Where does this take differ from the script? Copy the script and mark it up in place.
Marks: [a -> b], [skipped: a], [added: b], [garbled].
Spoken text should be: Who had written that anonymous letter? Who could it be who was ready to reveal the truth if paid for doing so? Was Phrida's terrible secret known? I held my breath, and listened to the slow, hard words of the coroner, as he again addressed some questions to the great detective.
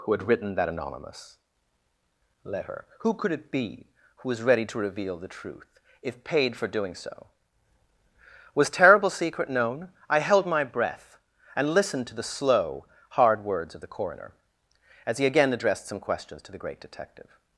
Who had written that anonymous letter? Who could it be who was ready to reveal the truth if paid for doing so? Was [skipped: Phrida's] terrible secret known? I held my breath, and listened to the slow, hard words of the coroner, as he again addressed some questions to the great detective.